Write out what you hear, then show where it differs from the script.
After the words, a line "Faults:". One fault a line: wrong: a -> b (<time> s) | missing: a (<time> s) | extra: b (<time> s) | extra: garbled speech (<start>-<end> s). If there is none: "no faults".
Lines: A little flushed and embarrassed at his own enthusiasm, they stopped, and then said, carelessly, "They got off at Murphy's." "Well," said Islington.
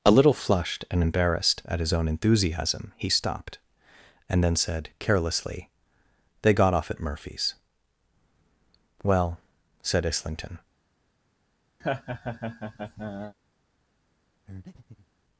A little flushed and embarrassed at his own enthusiasm, he stopped, and then said, carelessly, "They got off at Murphy's." "Well," said Islington.
Faults:
wrong: they -> he (3.0 s)